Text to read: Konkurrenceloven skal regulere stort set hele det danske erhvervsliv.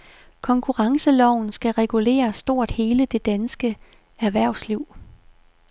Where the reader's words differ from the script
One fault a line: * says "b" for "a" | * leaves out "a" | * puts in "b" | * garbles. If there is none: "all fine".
* leaves out "set"